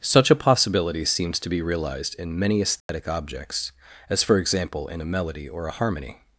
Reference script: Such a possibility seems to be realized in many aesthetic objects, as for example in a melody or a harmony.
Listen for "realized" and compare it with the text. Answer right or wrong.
right